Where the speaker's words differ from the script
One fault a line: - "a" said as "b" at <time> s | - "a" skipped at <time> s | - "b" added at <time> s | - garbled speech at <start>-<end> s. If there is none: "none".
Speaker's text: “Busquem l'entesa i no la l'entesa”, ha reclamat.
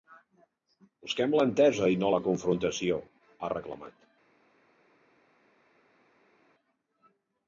- "l'entesa" said as "confrontació" at 2.3 s